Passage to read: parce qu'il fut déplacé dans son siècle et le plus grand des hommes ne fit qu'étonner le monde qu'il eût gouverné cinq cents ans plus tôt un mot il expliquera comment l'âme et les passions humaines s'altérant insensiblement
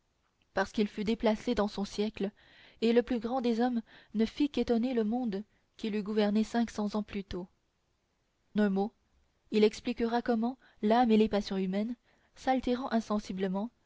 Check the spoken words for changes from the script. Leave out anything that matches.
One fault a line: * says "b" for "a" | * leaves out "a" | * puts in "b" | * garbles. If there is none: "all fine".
all fine